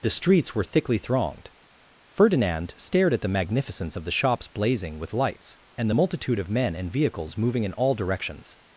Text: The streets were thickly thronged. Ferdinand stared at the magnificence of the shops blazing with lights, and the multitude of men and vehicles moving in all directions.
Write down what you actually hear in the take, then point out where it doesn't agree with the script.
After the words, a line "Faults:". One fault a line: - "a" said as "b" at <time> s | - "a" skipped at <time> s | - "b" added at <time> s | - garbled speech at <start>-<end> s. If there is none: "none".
The streets were thickly thronged. Ferdinand stared at the magnificence of the shops blazing with lights, and the multitude of men and vehicles moving in all directions.
Faults:
none